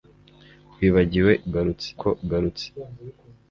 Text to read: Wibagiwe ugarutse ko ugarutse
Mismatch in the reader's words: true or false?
false